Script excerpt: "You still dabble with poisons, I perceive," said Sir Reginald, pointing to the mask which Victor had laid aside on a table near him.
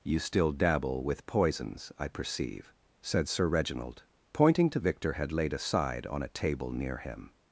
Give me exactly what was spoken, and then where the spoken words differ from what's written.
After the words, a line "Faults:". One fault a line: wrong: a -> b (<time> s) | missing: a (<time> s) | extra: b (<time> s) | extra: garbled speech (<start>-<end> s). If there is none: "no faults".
"You still dabble with poisons, I perceive," said Sir Reginald, pointing to Victor had laid aside on a table near him.
Faults:
missing: the mask which (4.8 s)